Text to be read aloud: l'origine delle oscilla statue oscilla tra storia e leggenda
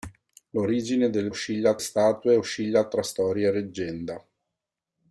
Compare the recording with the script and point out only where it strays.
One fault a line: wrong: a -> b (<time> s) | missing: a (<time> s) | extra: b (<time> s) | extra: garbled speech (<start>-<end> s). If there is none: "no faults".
no faults